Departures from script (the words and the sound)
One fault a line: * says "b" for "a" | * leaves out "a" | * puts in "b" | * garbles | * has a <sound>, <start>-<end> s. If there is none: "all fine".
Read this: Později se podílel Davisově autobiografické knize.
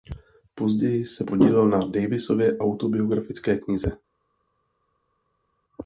* puts in "na"